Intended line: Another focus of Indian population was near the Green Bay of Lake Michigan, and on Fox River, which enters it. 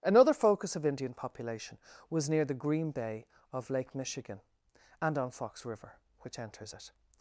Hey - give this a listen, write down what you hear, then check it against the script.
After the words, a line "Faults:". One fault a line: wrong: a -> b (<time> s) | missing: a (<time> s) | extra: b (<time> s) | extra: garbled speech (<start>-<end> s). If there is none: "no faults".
Another focus of Indian population was near the Green Bay of Lake Michigan, and on Fox River, which enters it.
Faults:
no faults